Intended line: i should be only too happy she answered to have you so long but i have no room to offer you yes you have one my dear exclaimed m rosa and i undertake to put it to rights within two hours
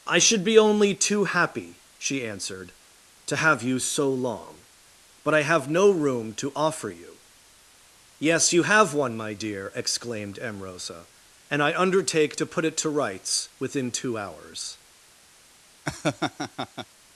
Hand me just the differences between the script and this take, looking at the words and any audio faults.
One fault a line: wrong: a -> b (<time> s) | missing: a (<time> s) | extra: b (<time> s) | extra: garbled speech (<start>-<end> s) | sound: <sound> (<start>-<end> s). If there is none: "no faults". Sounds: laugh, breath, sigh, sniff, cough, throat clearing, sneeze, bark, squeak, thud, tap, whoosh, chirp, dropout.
sound: laugh (15.8-16.9 s)